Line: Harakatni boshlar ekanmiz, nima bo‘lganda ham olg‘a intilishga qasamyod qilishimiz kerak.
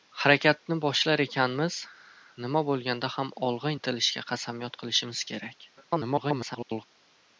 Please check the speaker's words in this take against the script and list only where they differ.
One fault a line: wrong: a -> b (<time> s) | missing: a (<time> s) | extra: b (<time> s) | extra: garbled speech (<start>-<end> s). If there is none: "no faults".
extra: garbled speech (5.8-6.8 s)